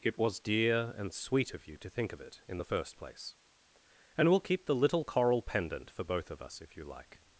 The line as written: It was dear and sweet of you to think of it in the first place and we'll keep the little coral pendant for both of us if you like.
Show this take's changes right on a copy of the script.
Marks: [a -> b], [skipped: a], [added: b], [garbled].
It was dear and sweet of you to think of it in the first place and we'll keep the little coral pendant for both of us if you like.